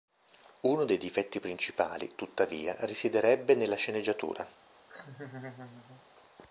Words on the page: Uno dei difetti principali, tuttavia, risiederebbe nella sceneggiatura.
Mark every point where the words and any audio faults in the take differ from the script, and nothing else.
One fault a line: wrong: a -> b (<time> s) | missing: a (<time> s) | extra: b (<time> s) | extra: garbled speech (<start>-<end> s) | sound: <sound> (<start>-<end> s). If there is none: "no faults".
sound: laugh (4.9-6.1 s)